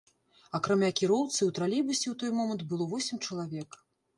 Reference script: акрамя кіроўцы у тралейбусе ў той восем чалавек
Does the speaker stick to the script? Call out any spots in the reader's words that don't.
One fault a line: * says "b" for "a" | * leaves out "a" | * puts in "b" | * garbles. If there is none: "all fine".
* puts in "момант было"